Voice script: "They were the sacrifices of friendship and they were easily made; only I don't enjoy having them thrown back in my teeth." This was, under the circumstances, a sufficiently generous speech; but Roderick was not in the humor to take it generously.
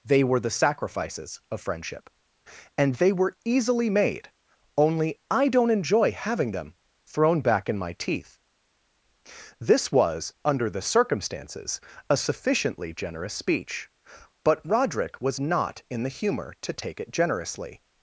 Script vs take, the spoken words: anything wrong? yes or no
no